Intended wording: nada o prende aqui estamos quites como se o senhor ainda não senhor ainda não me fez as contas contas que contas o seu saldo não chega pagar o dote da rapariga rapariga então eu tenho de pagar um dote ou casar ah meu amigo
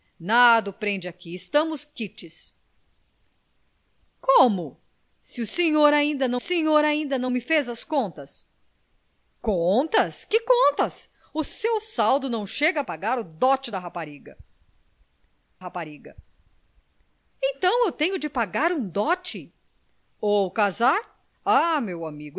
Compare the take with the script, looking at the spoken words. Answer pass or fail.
pass